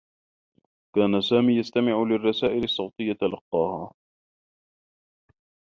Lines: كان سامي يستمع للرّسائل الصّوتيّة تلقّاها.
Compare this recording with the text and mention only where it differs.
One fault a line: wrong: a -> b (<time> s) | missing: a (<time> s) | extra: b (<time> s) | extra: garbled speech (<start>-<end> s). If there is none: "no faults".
no faults